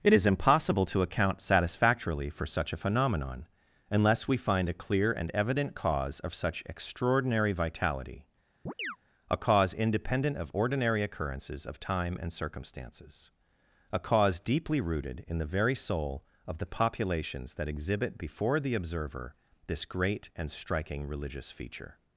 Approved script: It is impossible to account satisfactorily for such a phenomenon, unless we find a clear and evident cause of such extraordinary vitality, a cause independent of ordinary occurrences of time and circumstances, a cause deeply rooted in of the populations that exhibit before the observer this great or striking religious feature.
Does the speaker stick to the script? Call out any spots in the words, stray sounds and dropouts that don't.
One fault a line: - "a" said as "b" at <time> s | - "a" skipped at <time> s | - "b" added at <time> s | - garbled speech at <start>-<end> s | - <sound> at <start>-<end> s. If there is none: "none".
- chirp at 8.7-9.0 s
- "the very soul" added at 15.4 s
- "or" said as "and" at 20.3 s